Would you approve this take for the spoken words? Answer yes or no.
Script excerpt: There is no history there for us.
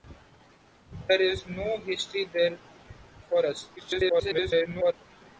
no